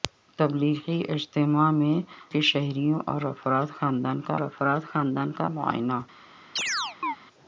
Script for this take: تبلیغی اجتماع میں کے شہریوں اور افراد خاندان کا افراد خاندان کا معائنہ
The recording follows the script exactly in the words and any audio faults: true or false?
false